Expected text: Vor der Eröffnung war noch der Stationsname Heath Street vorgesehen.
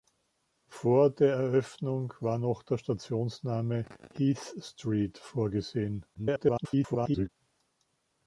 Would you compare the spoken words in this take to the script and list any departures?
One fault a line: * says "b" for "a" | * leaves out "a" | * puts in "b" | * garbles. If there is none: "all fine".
* garbles